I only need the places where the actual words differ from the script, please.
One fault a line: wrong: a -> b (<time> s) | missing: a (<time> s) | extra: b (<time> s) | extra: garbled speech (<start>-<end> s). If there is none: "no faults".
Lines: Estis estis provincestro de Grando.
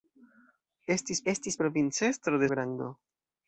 no faults